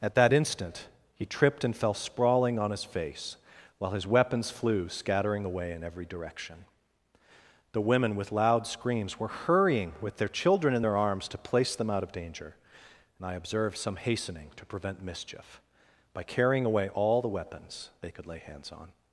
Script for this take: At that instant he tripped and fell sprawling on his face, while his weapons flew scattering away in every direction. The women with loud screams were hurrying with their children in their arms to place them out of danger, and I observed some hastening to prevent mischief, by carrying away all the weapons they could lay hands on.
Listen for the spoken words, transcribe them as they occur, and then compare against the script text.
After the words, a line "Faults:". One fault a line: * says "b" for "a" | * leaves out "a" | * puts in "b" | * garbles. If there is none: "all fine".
At that instant he tripped and fell sprawling on his face, while his weapons flew scattering away in every direction. The women with loud screams were hurrying with their children in their arms to place them out of danger, and I observed some hastening to prevent mischief, by carrying away all the weapons they could lay hands on.
Faults:
all fine